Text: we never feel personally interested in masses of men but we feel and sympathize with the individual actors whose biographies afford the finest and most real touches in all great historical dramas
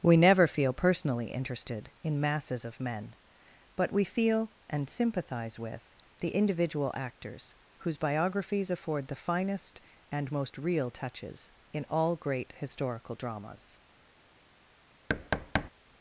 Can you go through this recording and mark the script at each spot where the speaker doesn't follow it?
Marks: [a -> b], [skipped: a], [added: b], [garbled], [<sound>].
we never feel personally interested in masses of men but we feel and sympathize with the individual actors whose biographies afford the finest and most real touches in all great historical dramas [thud]